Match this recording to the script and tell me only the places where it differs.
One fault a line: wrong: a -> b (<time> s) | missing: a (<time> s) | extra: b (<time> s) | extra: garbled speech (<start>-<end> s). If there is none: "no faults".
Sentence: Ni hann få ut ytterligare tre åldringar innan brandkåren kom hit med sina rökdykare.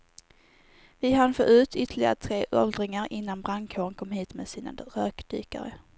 wrong: Ni -> Vi (1.0 s)